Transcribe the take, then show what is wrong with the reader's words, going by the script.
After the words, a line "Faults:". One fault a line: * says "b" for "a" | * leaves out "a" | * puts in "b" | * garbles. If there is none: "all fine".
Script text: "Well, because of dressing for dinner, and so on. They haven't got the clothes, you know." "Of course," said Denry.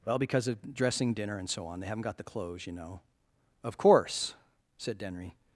"Well, because of dressing dinner, and so on. They haven't got the clothes, you know." "Of course," said Denry.
Faults:
* leaves out "for"